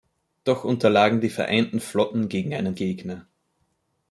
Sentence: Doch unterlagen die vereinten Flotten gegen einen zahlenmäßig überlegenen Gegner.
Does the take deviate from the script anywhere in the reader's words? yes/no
yes